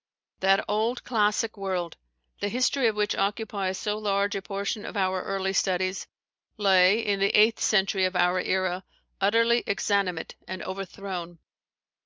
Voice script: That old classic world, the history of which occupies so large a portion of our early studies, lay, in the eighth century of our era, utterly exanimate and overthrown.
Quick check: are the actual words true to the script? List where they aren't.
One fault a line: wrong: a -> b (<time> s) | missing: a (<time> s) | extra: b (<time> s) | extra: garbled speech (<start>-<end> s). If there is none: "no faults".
no faults